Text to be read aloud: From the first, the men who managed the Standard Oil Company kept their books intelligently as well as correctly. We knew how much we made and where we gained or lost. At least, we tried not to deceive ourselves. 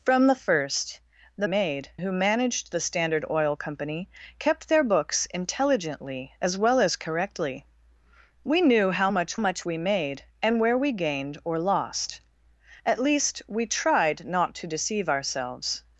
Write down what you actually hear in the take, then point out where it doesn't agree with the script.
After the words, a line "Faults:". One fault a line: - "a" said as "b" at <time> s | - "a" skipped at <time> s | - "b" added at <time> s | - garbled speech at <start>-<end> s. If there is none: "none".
From the first, the made who managed the Standard Oil Company kept their books intelligently as well as correctly. We knew how much much we made and where we gained or lost. At least, we tried not to deceive ourselves.
Faults:
- "men" said as "made" at 1.4 s
- "much" added at 9.4 s